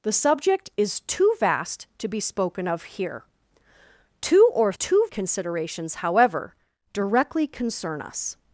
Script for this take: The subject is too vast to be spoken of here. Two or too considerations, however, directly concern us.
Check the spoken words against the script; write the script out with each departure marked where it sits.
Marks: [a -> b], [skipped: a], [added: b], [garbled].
The subject is too vast to be spoken of here. Two or too considerations, however, directly concern us.